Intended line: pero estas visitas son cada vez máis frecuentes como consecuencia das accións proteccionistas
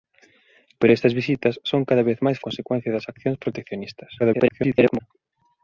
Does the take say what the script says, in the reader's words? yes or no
no